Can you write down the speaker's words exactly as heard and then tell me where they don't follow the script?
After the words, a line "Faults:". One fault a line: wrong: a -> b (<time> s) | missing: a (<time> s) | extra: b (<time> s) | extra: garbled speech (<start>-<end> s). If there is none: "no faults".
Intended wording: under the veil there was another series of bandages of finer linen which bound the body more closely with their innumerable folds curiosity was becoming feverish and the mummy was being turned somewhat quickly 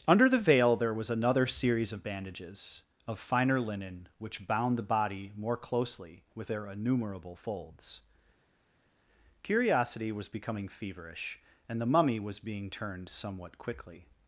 under the veil there was another series of bandages of finer linen which bound the body more closely with their innumerable folds curiosity was becoming feverish and the mummy was being turned somewhat quickly
Faults:
no faults